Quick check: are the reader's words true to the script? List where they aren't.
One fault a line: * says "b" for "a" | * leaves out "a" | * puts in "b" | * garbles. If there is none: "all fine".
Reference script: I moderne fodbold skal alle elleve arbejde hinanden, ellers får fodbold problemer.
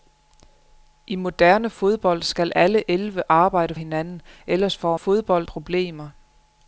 all fine